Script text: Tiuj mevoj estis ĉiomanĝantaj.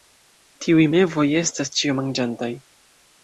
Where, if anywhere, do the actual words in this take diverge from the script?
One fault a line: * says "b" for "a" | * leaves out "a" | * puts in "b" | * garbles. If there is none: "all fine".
* says "estas" for "estis"